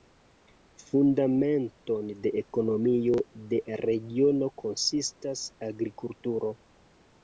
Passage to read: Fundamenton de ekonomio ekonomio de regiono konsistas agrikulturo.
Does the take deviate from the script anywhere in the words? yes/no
yes